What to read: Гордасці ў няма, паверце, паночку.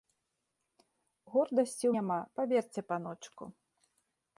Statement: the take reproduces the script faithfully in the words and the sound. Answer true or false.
true